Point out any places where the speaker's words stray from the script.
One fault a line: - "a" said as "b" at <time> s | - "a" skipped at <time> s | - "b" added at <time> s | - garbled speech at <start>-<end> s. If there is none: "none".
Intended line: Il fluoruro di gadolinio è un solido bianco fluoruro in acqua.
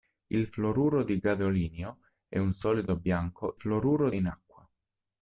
none